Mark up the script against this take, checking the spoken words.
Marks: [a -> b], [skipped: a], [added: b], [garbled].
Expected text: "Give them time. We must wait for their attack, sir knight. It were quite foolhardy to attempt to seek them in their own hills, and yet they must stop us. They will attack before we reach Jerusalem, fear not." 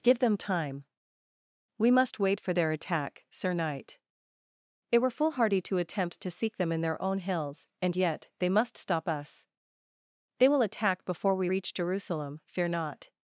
"Give them time. We must wait for their attack, sir knight. It were [skipped: quite] foolhardy to attempt to seek them in their own hills, and yet they must stop us. They will attack before we reach Jerusalem, fear not."